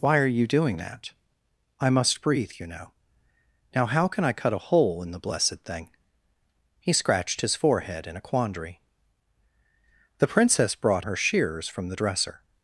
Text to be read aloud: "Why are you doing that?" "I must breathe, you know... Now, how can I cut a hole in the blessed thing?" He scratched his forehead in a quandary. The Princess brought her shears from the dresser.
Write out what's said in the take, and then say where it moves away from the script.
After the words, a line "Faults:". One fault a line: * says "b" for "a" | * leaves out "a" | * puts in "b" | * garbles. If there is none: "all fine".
"Why are you doing that?" "I must breathe, you know... Now, how can I cut a hole in the blessed thing?" He scratched his forehead in a quandary. The Princess brought her shears from the dresser.
Faults:
all fine